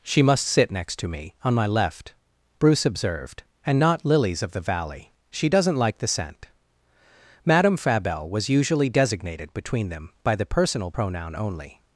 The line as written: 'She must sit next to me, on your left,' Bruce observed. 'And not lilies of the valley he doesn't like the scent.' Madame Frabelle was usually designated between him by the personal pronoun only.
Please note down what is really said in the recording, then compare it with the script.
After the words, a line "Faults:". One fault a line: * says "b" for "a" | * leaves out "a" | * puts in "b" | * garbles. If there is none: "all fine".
'She must sit next to me, on my left,' Bruce observed. 'And not lilies of the valley she doesn't like the scent.' Madame Frabelle was usually designated between them by the personal pronoun only.
Faults:
* says "my" for "your"
* says "she" for "he"
* says "them" for "him"